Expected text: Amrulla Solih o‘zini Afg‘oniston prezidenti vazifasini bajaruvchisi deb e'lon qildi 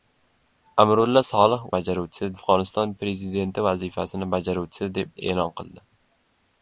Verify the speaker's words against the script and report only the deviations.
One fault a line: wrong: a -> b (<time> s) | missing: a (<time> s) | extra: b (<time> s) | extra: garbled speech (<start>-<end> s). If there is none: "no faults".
wrong: o‘zini -> bajaruvchisi (1.8 s)